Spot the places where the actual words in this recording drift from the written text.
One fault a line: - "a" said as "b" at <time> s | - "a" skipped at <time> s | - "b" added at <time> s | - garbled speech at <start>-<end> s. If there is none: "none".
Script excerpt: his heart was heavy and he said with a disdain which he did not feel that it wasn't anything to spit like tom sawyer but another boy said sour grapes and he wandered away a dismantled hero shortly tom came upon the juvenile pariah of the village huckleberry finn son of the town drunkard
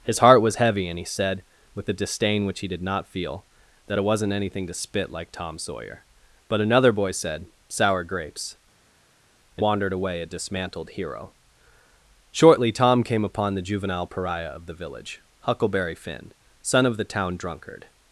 - "he" skipped at 9.6 s